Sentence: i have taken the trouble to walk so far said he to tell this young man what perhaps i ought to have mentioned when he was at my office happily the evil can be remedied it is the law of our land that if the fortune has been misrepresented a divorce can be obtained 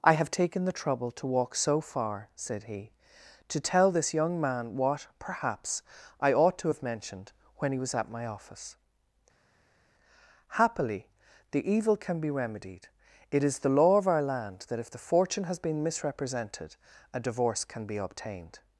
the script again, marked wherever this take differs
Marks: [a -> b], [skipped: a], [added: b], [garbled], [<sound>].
i have taken the trouble to walk so far said he to tell this young man what perhaps i ought to have mentioned when he was at my office happily the evil can be remedied it is the law of our land that if the fortune has been misrepresented a divorce can be obtained